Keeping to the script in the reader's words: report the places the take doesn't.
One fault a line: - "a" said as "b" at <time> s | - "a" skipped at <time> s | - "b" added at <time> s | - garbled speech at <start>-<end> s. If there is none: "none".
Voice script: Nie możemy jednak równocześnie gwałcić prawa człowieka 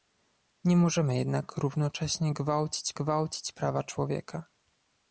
- "gwałcić" added at 2.9 s